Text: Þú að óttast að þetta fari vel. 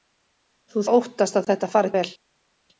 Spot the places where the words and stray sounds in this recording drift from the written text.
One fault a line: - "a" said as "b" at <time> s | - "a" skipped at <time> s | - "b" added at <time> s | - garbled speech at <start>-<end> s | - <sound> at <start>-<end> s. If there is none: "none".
none